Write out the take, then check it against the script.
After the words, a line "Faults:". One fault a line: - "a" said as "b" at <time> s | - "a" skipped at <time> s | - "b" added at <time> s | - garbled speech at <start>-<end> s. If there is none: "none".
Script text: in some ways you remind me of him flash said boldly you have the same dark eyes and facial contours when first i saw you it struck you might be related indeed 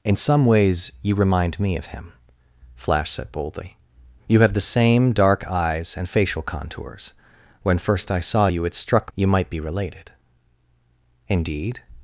in some ways you remind me of him flash said boldly you have the same dark eyes and facial contours when first i saw you it struck you might be related indeed
Faults:
none